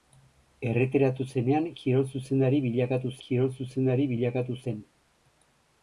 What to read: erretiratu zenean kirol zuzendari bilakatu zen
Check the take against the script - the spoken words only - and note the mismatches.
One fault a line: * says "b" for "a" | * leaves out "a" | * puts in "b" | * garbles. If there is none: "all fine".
* puts in "kirol zuzendari bilakatu"